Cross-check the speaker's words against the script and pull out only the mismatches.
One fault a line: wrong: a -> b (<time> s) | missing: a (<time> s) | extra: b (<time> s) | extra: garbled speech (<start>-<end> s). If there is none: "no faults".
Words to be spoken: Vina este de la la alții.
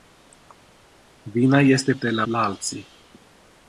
no faults